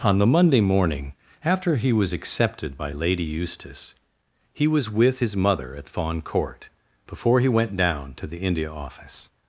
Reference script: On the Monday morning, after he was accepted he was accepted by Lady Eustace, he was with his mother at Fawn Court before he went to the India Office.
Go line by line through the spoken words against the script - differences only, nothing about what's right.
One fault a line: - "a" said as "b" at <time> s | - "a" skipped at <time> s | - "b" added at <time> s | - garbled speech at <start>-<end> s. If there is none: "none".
- "he was accepted" skipped at 2.8 s
- "down" added at 7.8 s